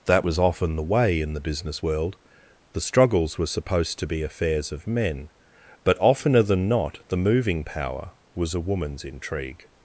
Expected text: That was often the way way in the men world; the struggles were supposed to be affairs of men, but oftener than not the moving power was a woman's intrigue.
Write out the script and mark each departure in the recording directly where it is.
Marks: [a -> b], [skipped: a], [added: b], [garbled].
That was often the way [skipped: way] in the [men -> business] world; the struggles were supposed to be affairs of men, but oftener than not the moving power was a woman's intrigue.